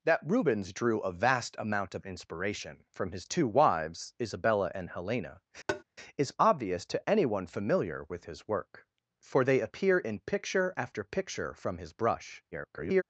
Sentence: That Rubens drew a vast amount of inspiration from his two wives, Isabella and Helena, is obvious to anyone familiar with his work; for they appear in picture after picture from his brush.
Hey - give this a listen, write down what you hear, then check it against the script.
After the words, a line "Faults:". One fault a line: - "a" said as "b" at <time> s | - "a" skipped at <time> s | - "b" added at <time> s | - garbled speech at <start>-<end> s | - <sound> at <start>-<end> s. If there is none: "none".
That Rubens drew a vast amount of inspiration from his two wives, Isabella and Helena, is obvious to anyone familiar with his work; for they appear in picture after picture from his brush. [garbled]
Faults:
- tap at 5.7-5.8 s
- garbled speech at 12.5-13.0 s